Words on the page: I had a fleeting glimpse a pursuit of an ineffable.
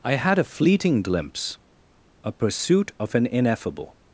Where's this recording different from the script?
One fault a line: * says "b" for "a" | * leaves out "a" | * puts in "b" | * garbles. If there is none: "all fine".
all fine